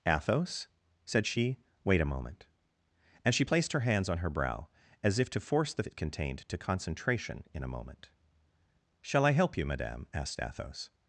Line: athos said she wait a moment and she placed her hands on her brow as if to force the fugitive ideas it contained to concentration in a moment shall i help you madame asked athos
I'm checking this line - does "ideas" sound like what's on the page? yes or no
no